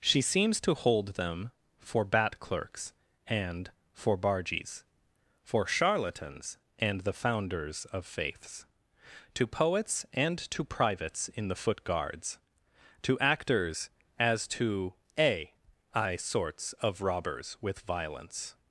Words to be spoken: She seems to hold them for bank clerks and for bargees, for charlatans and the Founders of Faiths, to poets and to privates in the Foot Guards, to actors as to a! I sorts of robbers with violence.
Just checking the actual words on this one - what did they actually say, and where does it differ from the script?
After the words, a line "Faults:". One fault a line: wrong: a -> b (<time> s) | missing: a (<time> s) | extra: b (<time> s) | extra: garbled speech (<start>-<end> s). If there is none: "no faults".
She seems to hold them for bat clerks and for bargees, for charlatans and the Founders of Faiths, to poets and to privates in the Foot Guards, to actors as to a! I sorts of robbers with violence.
Faults:
wrong: bank -> bat (2.0 s)